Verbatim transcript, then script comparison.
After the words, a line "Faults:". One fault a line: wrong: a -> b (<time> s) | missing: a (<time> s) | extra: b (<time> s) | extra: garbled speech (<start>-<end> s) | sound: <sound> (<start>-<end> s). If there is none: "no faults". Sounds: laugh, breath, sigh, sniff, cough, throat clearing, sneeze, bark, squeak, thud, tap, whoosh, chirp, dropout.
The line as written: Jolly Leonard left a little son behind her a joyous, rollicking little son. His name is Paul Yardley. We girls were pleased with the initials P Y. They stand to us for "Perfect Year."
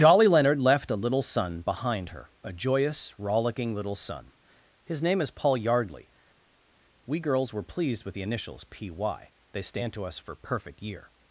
Jolly Leonard left a little son behind her a joyous, rollicking little son. His name is Paul Yardley. We girls were pleased with the initials P Y. They stand to us for "Perfect Year."
Faults:
no faults